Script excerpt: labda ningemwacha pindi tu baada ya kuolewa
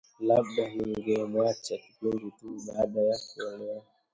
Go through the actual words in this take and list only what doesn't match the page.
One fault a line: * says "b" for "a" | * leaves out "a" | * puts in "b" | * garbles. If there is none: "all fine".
all fine